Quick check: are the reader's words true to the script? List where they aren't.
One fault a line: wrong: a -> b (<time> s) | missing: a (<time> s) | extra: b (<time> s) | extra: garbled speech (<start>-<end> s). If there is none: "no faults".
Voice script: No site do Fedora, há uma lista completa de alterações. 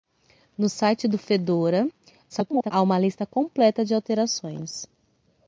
extra: garbled speech (2.3-2.7 s)